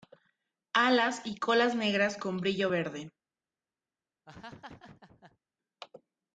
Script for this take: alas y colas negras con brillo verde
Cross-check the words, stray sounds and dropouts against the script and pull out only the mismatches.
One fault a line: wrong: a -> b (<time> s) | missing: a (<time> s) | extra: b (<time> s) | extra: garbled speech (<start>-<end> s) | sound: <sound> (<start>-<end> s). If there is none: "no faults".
sound: laugh (4.3-5.4 s)